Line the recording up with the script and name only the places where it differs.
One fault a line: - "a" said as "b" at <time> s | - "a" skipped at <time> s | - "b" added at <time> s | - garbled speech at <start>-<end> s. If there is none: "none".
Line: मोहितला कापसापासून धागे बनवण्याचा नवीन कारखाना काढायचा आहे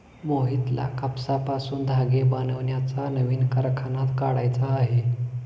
none